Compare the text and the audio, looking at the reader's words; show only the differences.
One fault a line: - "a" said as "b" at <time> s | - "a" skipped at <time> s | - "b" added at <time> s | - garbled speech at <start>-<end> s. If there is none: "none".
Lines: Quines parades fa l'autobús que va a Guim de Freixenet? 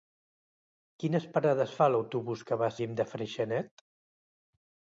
none